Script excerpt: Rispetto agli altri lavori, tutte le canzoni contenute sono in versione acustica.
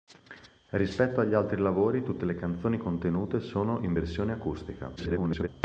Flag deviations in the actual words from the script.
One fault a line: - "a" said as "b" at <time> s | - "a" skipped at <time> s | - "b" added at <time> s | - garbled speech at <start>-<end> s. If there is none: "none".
- garbled speech at 5.0-5.5 s